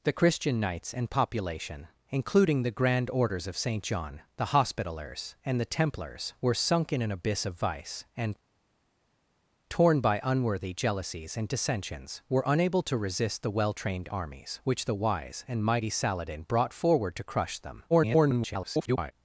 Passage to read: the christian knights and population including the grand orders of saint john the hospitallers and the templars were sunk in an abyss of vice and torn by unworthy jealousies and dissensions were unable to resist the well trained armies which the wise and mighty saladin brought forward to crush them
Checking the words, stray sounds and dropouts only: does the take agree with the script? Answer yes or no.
no